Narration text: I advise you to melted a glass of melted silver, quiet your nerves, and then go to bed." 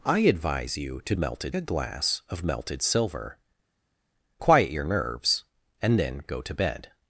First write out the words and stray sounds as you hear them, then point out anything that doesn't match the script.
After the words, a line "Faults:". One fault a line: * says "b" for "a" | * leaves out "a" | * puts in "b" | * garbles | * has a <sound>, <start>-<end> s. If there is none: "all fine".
I advise you to melted a glass of melted silver, quiet your nerves, and then go to bed."
Faults:
all fine